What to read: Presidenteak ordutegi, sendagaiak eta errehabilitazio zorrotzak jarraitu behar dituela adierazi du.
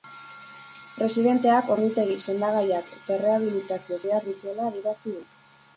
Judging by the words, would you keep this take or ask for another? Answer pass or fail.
fail